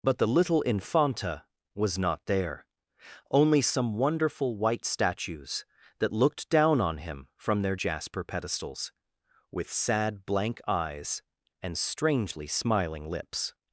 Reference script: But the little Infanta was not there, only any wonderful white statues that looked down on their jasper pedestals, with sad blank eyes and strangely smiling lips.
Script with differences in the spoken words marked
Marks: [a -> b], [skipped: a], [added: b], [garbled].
But the little Infanta was not there, only [any -> some] wonderful white statues that looked down on [added: him from] their jasper pedestals, with sad blank eyes and strangely smiling lips.